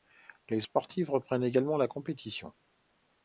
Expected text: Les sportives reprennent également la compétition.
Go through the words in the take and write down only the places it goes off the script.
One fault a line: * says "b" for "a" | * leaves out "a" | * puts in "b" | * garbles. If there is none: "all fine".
all fine